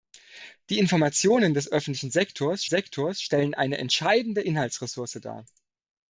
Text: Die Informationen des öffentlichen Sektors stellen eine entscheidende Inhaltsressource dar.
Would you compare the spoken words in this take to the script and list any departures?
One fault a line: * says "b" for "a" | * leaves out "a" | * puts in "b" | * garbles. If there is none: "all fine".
* puts in "Sektors"